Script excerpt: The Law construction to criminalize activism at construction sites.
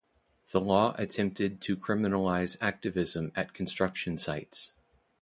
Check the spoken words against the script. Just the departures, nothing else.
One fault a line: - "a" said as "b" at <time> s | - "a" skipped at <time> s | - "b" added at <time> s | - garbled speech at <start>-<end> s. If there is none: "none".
- "construction" said as "attempted" at 1.0 s